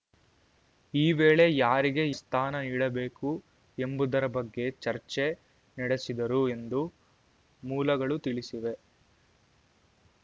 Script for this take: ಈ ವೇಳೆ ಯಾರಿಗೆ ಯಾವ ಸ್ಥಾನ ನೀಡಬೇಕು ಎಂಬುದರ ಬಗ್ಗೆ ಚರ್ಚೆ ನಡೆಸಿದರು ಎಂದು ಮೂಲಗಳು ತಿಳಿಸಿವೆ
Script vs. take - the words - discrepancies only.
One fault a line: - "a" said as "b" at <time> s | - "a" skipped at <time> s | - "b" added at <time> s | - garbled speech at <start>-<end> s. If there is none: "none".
- "ಯಾವ" skipped at 2.1 s